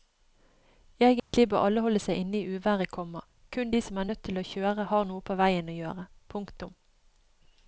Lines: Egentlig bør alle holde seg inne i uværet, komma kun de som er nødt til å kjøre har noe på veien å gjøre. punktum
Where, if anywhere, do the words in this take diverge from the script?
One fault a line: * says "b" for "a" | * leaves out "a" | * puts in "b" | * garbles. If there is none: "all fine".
all fine